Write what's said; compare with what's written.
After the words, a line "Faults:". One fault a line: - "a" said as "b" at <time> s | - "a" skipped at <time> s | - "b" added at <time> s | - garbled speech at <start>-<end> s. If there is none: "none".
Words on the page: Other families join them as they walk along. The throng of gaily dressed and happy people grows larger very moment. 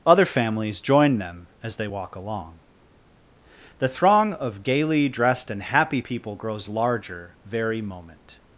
Other families join them as they walk along. The throng of gaily dressed and happy people grows larger very moment.
Faults:
none